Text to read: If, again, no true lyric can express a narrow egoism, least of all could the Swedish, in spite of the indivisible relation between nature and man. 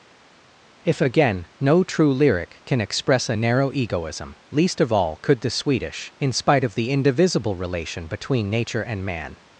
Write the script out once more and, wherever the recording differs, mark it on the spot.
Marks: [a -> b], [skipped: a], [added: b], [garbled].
If, again, no true lyric can express a narrow egoism, least of all could the Swedish, in spite of the indivisible relation between nature and man.